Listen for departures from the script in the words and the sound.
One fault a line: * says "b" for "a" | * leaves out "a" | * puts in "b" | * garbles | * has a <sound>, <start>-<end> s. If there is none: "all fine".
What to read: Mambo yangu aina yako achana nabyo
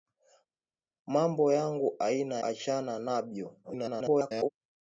* leaves out "yako"
* garbles